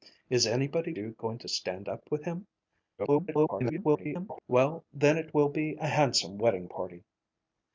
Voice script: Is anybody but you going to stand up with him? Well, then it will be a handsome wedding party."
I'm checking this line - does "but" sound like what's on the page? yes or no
no